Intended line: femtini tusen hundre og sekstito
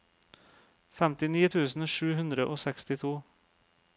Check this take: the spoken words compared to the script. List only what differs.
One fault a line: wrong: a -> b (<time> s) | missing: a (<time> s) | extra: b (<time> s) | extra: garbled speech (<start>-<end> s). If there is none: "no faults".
extra: sju (1.9 s)